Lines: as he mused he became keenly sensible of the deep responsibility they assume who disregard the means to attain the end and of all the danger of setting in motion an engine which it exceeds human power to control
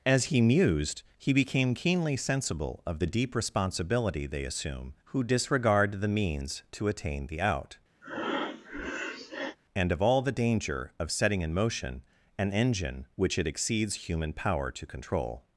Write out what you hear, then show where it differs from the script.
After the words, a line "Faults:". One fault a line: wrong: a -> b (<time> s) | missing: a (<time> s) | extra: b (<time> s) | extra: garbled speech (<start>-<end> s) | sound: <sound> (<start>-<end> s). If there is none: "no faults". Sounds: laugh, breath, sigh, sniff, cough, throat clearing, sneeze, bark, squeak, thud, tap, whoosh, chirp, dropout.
as he mused he became keenly sensible of the deep responsibility they assume who disregard the means to attain the out and of all the danger of setting in motion an engine which it exceeds human power to control
Faults:
wrong: end -> out (7.4 s)
sound: breath (8.0-9.6 s)